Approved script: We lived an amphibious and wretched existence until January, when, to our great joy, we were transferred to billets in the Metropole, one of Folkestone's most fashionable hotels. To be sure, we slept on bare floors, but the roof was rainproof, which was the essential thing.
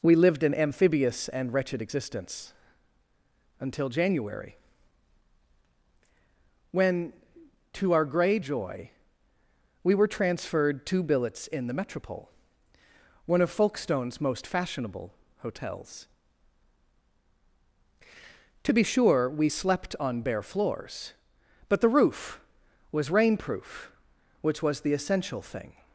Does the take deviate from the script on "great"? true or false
true